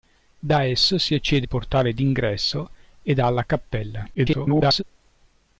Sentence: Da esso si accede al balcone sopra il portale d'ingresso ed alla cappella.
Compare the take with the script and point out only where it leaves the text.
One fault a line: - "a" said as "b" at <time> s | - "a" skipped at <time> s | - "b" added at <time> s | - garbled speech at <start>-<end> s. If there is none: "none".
- "al balcone sopra" skipped at 1.5 s
- garbled speech at 4.1-4.8 s